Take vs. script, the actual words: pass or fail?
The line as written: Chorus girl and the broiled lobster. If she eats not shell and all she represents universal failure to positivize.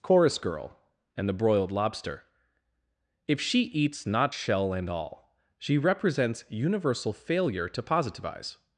pass